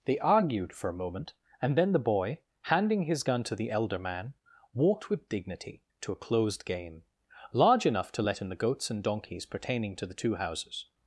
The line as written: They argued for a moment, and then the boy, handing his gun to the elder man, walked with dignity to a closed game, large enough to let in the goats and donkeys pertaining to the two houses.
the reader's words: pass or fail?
pass